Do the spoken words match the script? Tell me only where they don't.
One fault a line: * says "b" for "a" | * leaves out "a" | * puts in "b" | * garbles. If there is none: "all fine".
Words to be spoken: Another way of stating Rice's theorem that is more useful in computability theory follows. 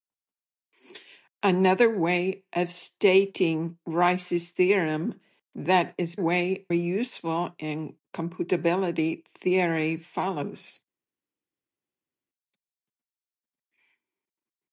* says "way" for "more"